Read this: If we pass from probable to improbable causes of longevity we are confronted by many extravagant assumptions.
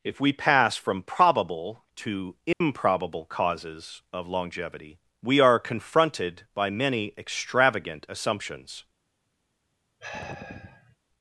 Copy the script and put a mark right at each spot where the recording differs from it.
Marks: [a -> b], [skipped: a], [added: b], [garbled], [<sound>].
If we pass from probable to improbable [dropout] causes of longevity we are confronted by many extravagant assumptions. [sigh]